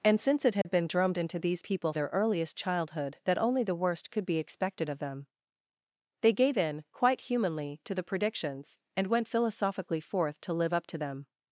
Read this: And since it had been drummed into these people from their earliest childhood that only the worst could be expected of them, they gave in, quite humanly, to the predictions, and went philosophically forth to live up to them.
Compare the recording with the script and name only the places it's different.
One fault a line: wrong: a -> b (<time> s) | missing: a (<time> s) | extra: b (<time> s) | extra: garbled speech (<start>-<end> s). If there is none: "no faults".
missing: from (1.9 s)